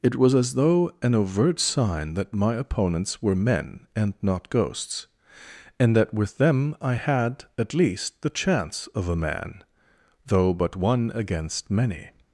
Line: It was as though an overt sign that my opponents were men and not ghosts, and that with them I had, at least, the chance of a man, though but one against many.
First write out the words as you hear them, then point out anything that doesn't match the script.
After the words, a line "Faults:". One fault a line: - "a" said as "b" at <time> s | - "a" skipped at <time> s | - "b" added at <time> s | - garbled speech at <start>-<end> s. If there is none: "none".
It was as though an overt sign that my opponents were men and not ghosts, and that with them I had, at least, the chance of a man, though but one against many.
Faults:
none